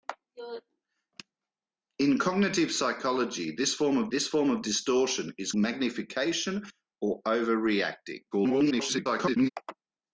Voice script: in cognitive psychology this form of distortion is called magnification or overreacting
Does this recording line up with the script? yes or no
no